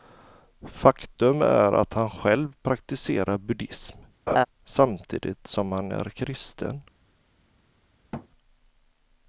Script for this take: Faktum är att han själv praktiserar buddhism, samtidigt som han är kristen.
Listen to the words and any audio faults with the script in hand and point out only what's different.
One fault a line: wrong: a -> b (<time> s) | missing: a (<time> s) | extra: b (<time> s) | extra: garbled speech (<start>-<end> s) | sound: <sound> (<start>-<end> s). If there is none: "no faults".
sound: laugh (4.3-4.5 s)
sound: thud (8.1-8.3 s)